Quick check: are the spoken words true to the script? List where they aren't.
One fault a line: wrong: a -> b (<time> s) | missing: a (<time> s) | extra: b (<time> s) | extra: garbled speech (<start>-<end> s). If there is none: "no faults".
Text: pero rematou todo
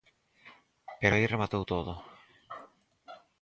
extra: aí (1.1 s)